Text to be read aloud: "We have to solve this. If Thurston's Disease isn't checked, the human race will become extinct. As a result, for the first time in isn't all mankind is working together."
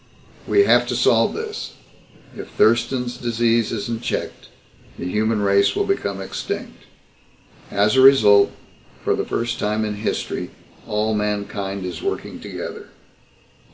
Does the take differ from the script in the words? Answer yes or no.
yes